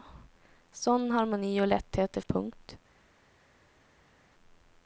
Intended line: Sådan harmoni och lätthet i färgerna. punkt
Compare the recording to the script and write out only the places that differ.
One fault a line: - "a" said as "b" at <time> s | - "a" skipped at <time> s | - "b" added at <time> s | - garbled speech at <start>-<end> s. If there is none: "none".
- "färgerna" skipped at 2.2 s